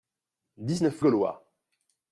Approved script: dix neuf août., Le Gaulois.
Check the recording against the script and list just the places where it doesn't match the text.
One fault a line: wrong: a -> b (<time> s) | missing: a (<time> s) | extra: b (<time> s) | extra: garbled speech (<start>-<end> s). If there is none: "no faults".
missing: août Le (1.0 s)